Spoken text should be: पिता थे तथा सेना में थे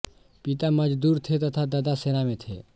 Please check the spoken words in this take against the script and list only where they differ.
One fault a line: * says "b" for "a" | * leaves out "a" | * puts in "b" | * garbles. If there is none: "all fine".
* puts in "मजदूर"
* puts in "दादा"